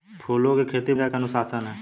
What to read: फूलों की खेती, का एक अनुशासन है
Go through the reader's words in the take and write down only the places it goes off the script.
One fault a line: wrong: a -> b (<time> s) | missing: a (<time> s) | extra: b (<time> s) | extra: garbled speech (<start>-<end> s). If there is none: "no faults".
no faults